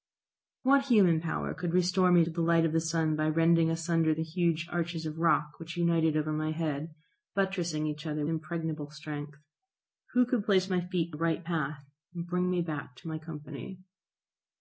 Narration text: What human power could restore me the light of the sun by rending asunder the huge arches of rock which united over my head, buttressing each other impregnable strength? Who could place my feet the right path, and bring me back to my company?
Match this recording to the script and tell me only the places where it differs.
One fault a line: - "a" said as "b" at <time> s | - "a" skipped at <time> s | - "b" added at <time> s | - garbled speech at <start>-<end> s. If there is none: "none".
none